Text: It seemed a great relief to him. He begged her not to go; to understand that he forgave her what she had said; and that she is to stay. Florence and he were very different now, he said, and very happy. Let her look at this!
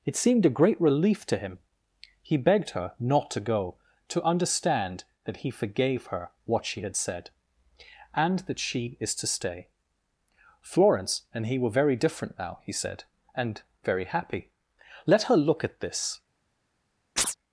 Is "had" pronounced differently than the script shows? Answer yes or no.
no